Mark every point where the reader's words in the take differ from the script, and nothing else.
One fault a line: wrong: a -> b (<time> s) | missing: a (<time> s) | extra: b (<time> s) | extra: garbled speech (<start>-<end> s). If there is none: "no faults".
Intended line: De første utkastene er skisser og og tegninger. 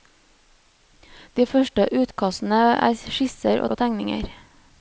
no faults